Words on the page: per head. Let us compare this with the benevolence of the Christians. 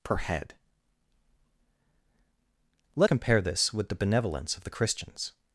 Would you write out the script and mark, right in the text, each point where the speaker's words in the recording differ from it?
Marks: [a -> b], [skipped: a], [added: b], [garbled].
per head. Let [skipped: us] compare this with the benevolence of the Christians.